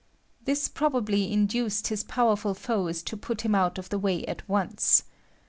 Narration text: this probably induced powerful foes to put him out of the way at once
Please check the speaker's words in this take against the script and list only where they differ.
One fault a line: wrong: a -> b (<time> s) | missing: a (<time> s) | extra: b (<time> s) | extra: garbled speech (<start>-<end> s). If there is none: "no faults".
extra: his (1.9 s)